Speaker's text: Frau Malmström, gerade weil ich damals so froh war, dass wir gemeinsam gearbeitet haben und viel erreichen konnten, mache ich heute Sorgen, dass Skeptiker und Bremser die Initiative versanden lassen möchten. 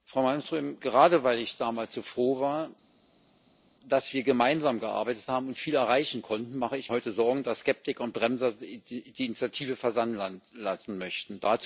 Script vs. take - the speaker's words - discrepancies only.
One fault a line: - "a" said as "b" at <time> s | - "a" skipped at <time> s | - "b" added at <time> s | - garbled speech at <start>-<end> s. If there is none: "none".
none